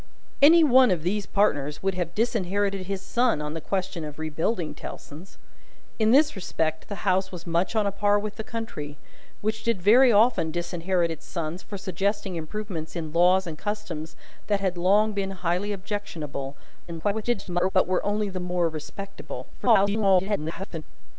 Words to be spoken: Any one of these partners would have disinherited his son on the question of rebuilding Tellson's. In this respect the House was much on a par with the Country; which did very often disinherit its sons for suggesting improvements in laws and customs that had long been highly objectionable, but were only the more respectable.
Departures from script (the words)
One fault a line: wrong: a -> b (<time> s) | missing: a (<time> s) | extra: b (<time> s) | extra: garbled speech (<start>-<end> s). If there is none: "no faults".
extra: garbled speech (16.9-17.7 s)
extra: garbled speech (19.5-20.8 s)